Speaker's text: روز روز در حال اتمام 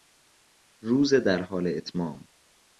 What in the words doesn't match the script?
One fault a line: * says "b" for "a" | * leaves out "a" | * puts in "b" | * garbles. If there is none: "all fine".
* leaves out "روز"